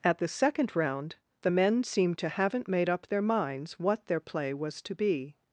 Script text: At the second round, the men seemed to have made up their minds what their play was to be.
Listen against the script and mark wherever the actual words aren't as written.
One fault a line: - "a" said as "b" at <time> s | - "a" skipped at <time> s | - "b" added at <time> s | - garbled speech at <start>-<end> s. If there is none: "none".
- "have" said as "haven't" at 2.3 s